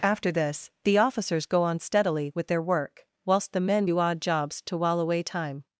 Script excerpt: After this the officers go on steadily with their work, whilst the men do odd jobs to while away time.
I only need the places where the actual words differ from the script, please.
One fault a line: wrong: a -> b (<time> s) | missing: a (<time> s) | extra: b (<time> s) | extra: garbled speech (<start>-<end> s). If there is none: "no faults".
no faults